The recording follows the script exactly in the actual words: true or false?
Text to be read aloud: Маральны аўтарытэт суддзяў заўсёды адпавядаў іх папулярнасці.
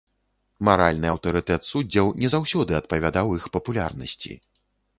false